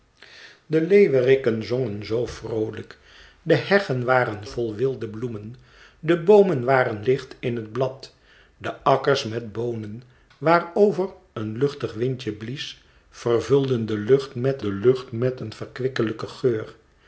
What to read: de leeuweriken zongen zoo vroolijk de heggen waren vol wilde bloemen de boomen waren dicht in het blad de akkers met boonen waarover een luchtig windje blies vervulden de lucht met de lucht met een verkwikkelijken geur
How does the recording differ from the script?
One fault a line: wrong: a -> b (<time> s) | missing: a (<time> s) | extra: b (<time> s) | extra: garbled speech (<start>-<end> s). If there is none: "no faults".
no faults